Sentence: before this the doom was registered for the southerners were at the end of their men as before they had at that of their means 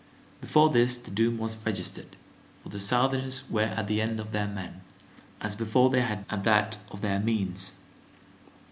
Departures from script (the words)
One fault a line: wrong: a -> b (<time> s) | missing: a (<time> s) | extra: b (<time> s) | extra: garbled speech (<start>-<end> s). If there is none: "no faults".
no faults